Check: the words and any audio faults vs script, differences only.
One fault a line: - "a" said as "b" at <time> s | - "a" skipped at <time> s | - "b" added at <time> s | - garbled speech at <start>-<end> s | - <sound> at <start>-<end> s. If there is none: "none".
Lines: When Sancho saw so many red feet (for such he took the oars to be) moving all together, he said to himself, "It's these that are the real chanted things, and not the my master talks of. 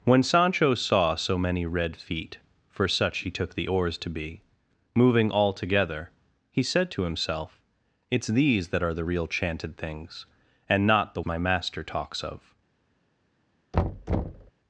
- thud at 13.7-14.5 s